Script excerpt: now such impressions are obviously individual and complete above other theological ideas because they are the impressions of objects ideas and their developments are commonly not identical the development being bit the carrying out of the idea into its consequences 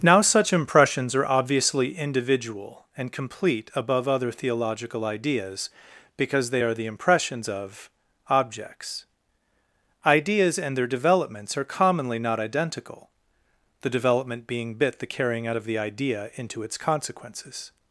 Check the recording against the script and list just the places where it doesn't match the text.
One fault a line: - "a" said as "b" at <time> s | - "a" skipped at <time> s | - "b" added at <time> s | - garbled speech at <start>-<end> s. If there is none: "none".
none